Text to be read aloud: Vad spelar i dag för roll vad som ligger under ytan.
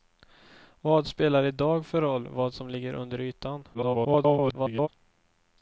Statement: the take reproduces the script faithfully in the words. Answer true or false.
false